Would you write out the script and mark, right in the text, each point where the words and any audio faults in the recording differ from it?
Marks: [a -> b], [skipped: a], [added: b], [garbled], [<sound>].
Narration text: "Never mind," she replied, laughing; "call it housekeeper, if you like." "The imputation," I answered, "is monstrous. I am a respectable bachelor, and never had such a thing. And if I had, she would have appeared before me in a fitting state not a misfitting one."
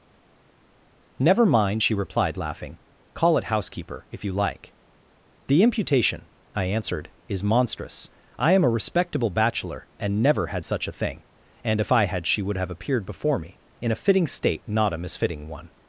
"Never mind," she replied, laughing; "call it housekeeper, if you like." "The imputation," I answered, "is monstrous. I am a respectable bachelor, and never had such a thing. And if I had, she would have appeared before me in a fitting state not a misfitting one."